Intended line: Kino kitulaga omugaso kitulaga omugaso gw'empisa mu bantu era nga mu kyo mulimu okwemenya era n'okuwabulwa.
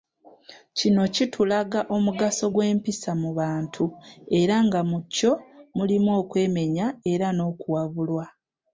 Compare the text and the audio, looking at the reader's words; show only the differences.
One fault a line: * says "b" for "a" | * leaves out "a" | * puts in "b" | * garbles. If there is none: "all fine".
* leaves out "kitulaga omugaso"